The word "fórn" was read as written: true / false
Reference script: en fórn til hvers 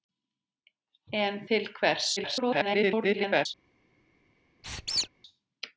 false